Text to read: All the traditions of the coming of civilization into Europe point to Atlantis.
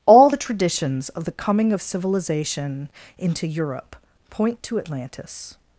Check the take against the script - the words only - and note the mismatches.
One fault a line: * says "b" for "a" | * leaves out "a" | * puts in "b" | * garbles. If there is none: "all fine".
all fine